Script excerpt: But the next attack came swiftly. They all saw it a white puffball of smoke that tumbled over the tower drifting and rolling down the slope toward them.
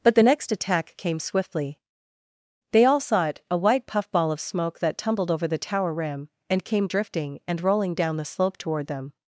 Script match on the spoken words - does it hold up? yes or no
no